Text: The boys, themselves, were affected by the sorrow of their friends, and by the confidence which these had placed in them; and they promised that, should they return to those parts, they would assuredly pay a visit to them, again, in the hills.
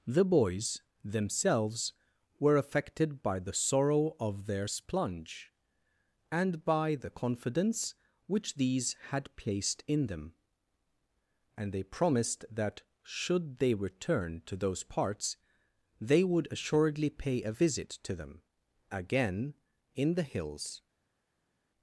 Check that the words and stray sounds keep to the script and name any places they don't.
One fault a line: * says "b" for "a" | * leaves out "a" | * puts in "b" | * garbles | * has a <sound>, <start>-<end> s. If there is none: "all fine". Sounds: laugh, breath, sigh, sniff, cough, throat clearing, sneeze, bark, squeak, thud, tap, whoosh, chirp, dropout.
* says "splunge" for "friends"